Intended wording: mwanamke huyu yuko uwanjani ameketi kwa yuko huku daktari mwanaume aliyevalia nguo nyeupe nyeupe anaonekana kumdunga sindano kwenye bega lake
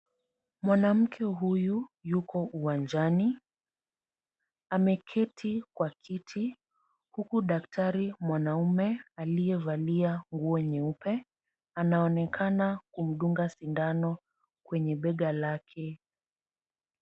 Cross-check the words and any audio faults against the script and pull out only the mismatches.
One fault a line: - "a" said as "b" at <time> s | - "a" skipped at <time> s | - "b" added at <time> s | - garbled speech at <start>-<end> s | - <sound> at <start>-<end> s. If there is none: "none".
- "yuko" said as "kiti" at 5.9 s
- "nyeupe" skipped at 11.3 s